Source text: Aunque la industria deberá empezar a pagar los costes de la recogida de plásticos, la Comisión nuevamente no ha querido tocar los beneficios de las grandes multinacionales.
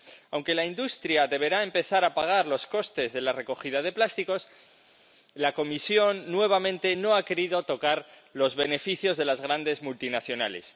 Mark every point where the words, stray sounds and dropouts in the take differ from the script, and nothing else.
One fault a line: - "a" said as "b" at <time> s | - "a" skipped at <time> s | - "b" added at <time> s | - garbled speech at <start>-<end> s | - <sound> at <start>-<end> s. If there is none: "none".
none